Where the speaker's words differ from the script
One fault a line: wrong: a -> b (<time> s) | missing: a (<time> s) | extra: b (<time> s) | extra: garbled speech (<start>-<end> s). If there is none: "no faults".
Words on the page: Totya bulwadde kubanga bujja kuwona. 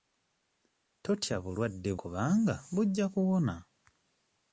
no faults